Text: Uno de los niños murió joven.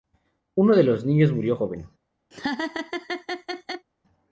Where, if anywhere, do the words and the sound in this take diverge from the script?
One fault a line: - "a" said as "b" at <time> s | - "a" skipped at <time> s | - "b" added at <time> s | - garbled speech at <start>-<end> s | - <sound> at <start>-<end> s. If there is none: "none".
- laugh at 2.3-3.9 s